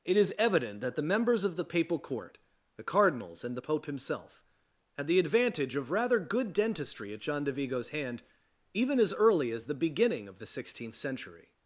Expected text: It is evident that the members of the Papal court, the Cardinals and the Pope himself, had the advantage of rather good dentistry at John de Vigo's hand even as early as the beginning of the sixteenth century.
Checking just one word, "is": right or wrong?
right